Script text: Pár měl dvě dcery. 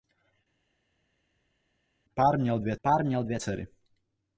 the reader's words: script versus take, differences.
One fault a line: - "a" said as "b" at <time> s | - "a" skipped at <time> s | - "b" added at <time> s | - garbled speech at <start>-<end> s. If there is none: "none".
- "pár měl dvě" added at 2.8 s